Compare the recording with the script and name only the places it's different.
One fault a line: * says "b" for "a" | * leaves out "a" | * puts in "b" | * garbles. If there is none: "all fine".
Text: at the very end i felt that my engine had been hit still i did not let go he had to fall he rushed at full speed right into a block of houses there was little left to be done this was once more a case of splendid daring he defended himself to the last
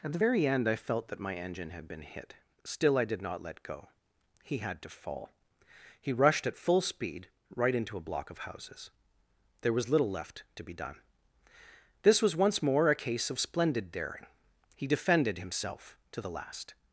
all fine